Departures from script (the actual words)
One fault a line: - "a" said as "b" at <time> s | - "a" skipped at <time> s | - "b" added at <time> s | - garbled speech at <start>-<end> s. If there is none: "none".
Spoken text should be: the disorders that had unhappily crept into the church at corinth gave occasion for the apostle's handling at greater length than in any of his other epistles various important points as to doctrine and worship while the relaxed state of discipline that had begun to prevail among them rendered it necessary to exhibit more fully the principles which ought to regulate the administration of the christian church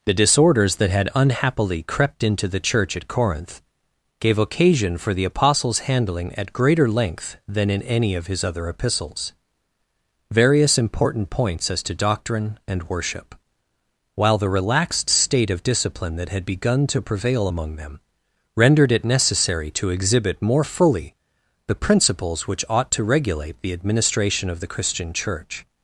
none